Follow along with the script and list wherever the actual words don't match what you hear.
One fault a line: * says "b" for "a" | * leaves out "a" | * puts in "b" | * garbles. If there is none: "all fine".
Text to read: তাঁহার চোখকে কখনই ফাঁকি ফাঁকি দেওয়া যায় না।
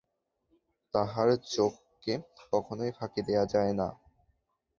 * leaves out "ফাঁকি"